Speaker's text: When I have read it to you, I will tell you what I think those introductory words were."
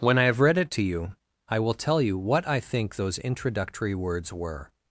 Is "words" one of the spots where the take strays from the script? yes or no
no